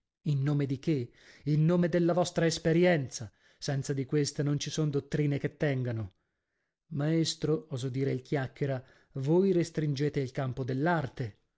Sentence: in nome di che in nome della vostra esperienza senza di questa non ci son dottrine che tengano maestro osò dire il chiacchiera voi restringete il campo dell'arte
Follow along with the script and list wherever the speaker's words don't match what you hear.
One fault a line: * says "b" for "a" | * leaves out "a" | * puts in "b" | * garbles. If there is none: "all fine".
all fine